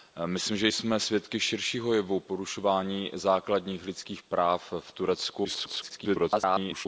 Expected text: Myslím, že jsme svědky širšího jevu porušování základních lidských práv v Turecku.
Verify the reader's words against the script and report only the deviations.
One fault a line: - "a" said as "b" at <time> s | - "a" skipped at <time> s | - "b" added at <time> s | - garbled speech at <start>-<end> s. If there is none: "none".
- garbled speech at 5.4-6.9 s